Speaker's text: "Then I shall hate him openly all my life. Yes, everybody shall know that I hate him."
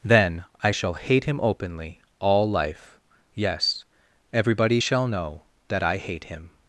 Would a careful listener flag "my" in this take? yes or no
yes